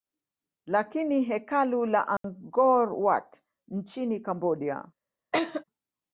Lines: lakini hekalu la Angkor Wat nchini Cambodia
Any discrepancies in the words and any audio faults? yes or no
yes